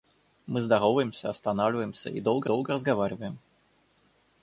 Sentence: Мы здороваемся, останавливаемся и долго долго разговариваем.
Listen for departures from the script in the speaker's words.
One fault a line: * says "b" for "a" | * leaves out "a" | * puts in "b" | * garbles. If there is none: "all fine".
all fine